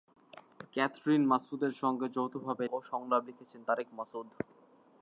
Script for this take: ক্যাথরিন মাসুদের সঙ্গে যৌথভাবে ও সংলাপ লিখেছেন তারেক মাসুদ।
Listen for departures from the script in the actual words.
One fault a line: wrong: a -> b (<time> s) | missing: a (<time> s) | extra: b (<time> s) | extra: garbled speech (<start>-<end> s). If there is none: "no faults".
no faults